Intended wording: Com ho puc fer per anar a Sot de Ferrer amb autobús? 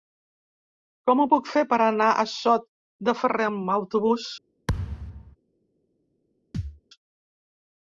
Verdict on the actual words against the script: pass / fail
pass